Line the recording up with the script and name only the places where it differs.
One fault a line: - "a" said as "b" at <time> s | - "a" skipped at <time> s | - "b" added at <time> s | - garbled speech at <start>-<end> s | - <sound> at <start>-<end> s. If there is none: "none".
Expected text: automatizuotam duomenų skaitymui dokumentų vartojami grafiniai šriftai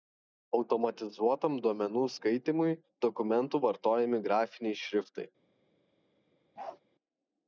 - bark at 6.6-6.8 s